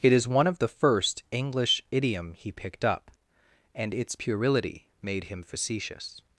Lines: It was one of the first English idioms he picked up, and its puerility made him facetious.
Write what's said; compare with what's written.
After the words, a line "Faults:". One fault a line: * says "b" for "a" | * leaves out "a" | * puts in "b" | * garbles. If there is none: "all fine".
It is one of the first English idiom he picked up, and its puerility made him facetious.
Faults:
* says "is" for "was"
* says "idiom" for "idioms"